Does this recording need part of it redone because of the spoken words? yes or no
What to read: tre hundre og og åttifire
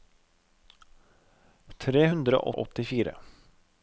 no